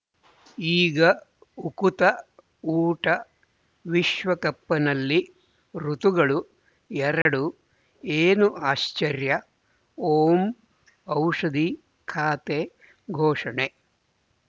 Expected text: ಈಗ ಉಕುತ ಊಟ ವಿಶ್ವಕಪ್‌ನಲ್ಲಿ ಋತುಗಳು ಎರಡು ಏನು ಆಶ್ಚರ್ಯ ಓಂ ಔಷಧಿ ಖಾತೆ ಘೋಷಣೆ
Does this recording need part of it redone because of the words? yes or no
no